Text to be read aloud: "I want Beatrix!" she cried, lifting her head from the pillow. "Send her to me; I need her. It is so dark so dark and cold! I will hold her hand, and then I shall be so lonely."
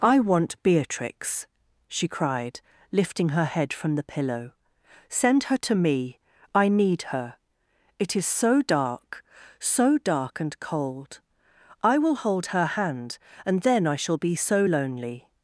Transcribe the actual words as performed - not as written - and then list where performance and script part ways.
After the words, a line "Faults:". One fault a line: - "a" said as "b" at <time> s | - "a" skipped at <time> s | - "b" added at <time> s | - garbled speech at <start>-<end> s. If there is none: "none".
"I want Beatrix!" she cried, lifting her head from the pillow. "Send her to me; I need her. It is so dark so dark and cold! I will hold her hand, and then I shall be so lonely."
Faults:
none